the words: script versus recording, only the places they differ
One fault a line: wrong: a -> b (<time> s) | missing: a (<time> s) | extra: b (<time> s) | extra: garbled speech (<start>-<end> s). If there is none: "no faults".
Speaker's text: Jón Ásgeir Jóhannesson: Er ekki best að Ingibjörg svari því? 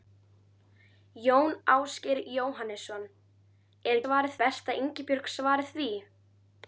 wrong: ekki -> svari (4.0 s)